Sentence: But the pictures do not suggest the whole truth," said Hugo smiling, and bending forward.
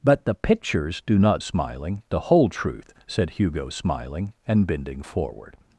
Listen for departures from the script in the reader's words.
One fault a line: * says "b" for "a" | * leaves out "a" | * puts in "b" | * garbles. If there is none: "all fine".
* says "smiling" for "suggest"